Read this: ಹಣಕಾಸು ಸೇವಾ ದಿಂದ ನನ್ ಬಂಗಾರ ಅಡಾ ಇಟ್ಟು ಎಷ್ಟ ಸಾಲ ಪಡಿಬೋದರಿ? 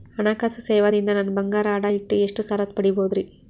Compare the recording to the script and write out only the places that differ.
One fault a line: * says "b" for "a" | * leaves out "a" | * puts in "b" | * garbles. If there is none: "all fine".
all fine